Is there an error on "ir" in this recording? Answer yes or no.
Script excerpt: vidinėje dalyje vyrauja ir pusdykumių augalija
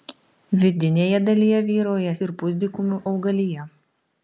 no